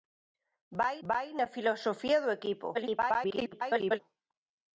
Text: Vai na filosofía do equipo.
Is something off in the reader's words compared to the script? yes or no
yes